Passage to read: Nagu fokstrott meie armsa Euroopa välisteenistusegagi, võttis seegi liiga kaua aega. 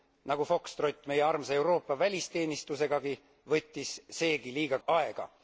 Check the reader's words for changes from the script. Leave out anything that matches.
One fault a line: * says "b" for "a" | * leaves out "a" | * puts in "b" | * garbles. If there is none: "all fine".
* leaves out "kaua"